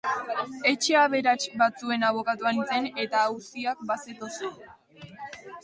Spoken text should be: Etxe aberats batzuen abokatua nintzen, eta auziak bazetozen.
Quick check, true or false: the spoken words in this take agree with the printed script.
true